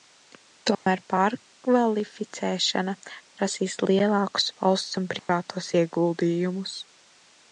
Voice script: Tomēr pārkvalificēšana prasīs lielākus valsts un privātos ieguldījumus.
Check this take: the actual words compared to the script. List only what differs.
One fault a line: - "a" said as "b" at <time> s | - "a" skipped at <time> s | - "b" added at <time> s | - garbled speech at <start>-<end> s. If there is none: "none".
none